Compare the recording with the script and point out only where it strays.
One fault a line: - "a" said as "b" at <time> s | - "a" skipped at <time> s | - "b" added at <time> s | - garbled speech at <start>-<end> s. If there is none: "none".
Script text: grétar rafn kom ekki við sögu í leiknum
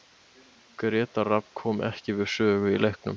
none